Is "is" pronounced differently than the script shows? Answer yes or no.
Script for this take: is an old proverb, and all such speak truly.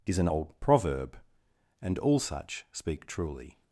no